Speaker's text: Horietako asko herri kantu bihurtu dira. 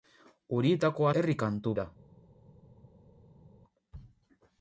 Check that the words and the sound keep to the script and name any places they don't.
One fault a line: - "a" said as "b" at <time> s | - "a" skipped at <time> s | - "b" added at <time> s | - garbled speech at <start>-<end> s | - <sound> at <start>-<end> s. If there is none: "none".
- "asko" skipped at 1.1 s
- "bihurtu" skipped at 1.7 s